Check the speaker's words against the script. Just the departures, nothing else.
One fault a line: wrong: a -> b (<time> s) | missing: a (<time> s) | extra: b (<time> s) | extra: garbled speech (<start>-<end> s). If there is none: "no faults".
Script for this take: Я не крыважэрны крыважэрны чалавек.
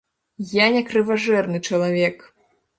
missing: крыважэрны (1.6 s)